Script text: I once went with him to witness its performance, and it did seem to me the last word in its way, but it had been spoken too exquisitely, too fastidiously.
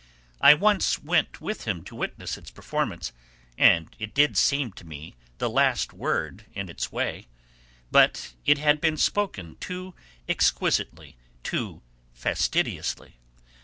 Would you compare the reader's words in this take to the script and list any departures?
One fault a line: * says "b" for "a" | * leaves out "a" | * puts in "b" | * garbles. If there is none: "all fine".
all fine